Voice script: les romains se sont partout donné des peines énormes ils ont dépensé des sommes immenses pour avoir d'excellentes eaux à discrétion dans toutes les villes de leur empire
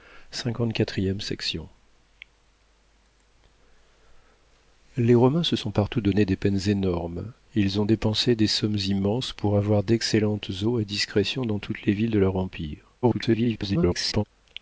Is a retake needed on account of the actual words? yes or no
yes